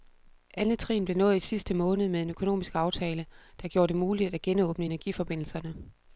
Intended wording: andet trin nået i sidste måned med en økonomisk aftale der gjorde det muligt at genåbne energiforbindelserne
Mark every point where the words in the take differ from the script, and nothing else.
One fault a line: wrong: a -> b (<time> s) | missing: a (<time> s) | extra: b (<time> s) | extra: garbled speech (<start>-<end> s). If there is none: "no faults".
extra: blev (1.1 s)